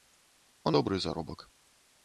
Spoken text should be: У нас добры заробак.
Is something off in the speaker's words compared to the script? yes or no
yes